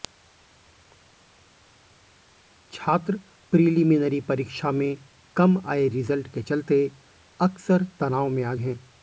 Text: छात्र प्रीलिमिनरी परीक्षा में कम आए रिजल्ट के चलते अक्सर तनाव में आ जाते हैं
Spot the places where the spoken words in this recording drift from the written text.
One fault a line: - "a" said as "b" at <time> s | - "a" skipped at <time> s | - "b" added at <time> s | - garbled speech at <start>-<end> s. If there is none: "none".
- "जाते" skipped at 8.5 s